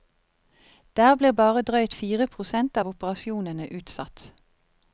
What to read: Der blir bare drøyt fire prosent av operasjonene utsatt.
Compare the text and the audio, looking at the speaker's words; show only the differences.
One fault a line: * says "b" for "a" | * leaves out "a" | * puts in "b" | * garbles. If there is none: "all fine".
all fine